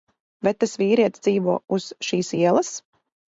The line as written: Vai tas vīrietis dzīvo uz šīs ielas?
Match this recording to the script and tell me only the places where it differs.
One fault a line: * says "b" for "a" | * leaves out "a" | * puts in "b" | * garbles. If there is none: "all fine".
all fine